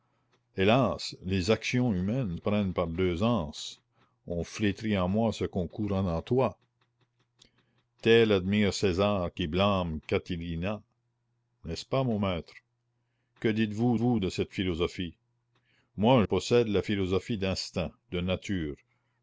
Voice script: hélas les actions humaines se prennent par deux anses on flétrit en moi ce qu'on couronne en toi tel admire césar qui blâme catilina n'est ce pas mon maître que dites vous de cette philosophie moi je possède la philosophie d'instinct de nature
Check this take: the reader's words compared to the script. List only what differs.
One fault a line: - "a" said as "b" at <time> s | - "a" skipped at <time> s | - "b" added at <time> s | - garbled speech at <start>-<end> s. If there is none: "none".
- "se" skipped at 2.4 s
- "vous" added at 13.9 s
- "je" skipped at 16.2 s